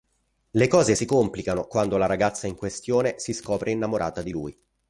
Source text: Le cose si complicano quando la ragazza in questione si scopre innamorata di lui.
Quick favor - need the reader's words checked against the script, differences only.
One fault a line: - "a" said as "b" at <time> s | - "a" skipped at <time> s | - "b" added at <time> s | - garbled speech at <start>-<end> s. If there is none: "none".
none